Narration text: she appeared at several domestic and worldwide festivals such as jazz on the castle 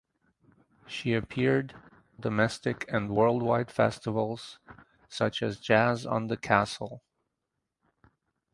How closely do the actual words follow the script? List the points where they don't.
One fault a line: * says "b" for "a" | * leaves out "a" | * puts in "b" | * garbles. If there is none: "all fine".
* leaves out "at several"